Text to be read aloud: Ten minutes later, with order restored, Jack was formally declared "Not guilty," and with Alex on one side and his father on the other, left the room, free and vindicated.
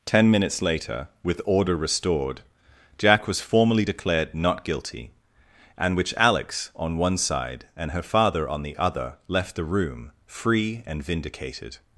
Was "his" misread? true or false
true